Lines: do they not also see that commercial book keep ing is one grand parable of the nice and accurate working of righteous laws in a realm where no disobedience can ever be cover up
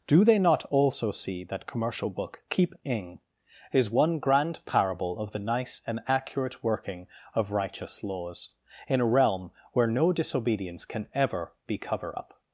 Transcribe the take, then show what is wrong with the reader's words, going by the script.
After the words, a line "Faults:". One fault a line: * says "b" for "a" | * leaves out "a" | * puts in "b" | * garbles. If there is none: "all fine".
do they not also see that commercial book keep ing is one grand parable of the nice and accurate working of righteous laws in a realm where no disobedience can ever be cover up
Faults:
all fine